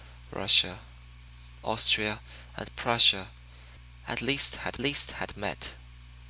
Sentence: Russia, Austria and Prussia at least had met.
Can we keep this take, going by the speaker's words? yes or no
no